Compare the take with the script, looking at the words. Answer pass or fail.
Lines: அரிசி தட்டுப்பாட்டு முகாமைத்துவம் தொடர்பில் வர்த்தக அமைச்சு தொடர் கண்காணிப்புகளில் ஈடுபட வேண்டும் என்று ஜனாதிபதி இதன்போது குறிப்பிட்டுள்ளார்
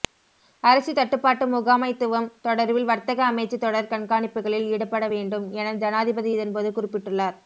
fail